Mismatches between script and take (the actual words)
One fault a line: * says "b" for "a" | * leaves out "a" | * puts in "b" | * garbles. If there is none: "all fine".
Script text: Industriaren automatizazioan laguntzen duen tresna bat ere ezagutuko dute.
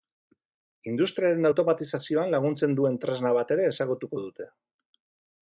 all fine